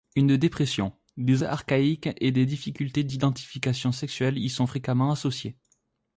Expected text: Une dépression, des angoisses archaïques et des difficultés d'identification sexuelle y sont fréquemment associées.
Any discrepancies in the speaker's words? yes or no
yes